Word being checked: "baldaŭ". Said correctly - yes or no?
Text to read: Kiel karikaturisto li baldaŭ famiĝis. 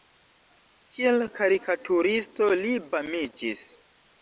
no